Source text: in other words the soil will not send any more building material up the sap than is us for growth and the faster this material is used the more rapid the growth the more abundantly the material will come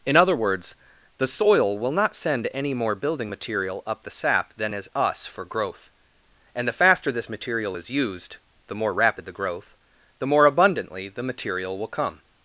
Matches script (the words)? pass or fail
pass